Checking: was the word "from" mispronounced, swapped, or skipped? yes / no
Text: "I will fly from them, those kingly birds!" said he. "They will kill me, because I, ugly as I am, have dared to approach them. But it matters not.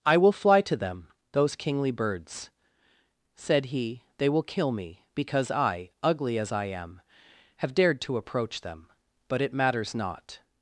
yes